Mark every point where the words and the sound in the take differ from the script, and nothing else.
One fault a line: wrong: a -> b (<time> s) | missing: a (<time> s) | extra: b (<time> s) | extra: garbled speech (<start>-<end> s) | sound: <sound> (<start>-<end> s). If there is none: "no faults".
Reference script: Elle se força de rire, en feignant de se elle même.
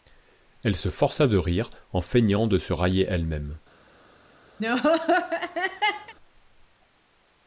extra: railler (2.7 s)
sound: laugh (4.6-6.1 s)